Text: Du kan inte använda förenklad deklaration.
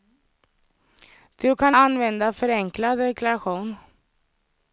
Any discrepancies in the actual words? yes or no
yes